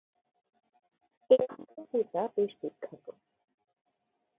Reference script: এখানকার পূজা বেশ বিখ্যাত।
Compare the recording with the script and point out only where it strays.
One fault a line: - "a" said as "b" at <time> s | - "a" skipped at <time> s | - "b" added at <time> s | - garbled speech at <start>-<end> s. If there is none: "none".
none